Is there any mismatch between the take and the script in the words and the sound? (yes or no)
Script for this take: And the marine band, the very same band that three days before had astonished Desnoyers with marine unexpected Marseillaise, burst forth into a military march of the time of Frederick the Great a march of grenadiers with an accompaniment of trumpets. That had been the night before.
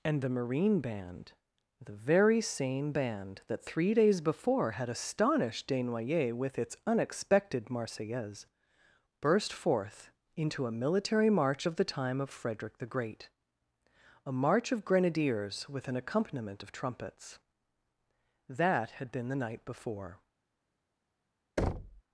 yes